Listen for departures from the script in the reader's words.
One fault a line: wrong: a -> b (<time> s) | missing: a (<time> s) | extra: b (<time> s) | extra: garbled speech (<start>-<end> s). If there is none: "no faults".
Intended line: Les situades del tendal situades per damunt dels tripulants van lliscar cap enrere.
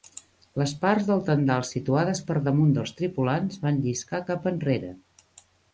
wrong: situades -> parts (0.8 s)